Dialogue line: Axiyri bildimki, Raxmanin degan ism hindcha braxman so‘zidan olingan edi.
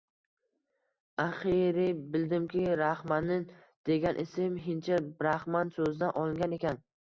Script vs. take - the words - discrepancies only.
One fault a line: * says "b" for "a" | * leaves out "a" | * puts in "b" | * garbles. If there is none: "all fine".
* says "ekan" for "edi"